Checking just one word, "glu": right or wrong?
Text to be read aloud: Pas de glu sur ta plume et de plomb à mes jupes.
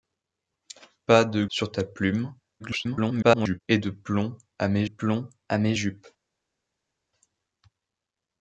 wrong